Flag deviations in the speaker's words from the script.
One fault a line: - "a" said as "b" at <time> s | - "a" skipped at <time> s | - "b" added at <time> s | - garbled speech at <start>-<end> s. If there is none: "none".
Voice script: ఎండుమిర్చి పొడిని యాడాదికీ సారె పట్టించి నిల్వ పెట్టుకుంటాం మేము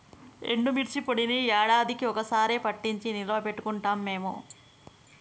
- "ఒక్క" added at 2.0 s